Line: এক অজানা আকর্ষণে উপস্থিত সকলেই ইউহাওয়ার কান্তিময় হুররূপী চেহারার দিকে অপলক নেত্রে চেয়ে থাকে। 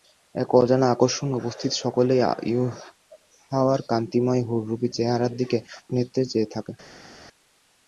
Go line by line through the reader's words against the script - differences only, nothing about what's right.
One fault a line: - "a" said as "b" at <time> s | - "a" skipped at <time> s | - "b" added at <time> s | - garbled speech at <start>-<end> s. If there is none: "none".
- "অপলক" skipped at 5.6 s